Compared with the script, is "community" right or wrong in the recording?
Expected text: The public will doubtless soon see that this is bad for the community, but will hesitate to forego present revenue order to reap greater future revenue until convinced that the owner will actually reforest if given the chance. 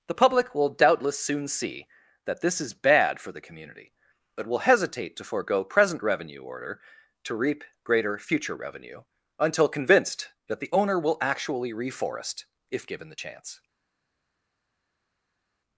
right